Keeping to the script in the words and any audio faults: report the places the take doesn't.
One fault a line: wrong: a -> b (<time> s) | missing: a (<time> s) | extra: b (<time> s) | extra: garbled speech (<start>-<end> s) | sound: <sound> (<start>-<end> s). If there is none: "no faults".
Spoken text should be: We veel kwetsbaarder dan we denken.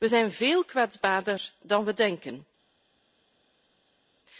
extra: zijn (0.0 s)